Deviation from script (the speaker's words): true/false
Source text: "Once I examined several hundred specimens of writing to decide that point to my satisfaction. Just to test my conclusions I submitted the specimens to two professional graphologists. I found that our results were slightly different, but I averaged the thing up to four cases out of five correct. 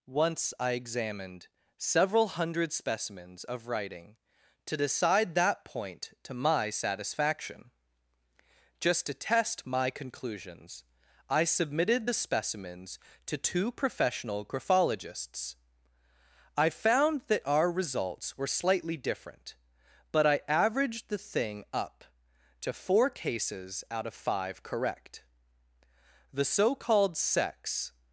true